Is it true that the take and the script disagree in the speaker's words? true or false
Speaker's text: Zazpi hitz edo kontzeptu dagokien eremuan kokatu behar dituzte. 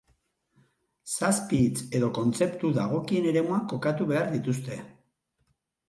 false